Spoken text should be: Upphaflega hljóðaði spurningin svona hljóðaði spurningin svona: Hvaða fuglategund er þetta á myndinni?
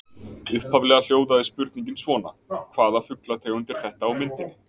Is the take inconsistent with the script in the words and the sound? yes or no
yes